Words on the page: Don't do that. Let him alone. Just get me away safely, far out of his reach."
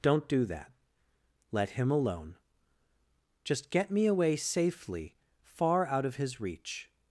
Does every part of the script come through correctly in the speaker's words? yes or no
yes